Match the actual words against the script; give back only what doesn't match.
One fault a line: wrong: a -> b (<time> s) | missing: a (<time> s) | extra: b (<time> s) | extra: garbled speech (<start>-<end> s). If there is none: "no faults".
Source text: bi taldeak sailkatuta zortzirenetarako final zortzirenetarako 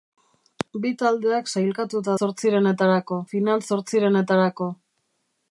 no faults